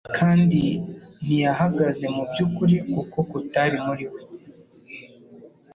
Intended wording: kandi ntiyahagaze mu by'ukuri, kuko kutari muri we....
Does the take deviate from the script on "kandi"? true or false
false